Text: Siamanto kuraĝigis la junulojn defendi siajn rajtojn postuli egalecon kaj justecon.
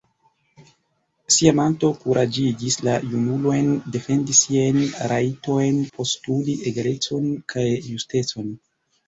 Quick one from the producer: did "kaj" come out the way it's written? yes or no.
yes